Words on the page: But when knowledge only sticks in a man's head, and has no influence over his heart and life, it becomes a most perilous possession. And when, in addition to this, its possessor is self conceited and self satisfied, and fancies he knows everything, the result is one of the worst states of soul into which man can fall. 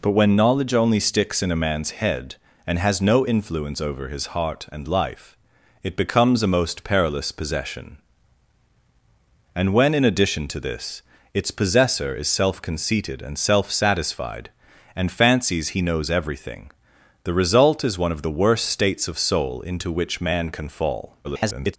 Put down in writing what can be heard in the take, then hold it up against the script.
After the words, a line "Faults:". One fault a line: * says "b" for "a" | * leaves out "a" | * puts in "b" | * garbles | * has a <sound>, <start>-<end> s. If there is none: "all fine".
But when knowledge only sticks in a man's head, and has no influence over his heart and life, it becomes a most perilous possession. And when, in addition to this, its possessor is self conceited and self satisfied, and fancies he knows everything, the result is one of the worst states of soul into which man can fall. [garbled]
Faults:
* garbles